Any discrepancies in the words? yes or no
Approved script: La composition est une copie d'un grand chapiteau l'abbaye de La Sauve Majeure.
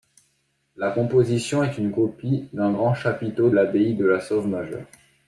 no